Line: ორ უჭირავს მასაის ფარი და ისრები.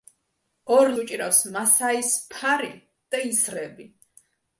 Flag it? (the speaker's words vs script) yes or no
no